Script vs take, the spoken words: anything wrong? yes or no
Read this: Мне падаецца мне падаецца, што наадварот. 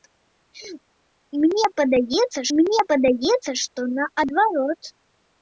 no